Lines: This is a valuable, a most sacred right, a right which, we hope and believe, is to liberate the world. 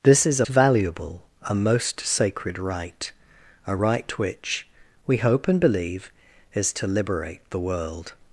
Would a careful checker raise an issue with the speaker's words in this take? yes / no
no